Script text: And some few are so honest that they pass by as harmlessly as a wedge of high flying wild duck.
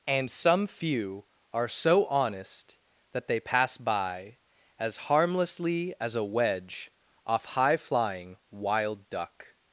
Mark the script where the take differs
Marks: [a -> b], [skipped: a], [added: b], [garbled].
And some few are so honest that they pass by as harmlessly as a wedge [of -> off] high flying wild duck.